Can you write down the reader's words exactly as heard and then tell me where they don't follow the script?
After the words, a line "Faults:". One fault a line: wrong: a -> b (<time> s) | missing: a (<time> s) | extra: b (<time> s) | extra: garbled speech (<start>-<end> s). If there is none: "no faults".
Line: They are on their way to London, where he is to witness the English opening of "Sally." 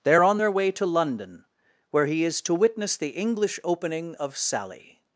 They are on their way to London, where he is to witness the English opening of "Sally."
Faults:
no faults